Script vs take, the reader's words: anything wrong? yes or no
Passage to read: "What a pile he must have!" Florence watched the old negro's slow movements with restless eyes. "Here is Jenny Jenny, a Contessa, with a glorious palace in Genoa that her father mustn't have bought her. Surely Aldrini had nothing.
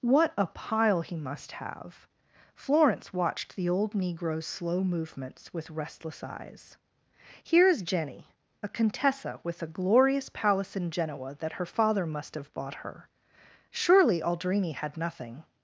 yes